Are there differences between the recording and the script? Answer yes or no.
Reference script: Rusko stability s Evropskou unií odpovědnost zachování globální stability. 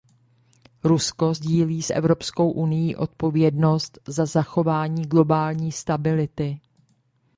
yes